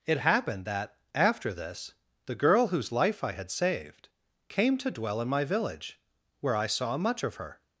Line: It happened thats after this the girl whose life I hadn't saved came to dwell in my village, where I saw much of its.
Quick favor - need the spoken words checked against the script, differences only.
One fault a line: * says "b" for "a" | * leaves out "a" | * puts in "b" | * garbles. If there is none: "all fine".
* says "that" for "thats"
* says "had" for "hadn't"
* says "her" for "its"